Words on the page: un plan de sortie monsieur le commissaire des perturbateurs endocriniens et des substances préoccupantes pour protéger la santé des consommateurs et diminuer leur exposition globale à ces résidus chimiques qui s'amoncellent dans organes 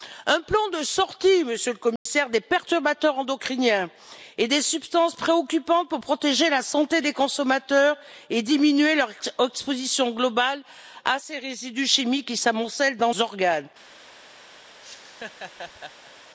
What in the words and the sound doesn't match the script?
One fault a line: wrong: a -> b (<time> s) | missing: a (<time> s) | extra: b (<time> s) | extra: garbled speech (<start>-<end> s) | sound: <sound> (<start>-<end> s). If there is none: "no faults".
sound: dropout (2.0-2.1 s)
sound: laugh (14.8-16.1 s)